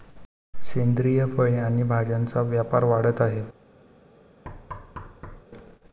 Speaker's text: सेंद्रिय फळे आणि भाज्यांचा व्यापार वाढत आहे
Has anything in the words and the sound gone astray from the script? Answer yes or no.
yes